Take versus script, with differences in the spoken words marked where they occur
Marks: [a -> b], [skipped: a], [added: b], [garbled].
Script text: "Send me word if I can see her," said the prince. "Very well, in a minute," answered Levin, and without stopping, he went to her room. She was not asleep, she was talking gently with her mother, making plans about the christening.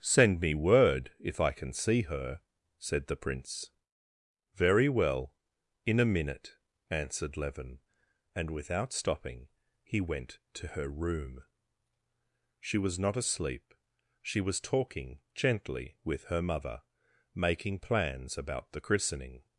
"Send me word if I can see her," said the prince. "Very well, in a minute," answered Levin, and without stopping, he went to her room. She was not asleep, she was talking gently with her mother, making plans about the christening.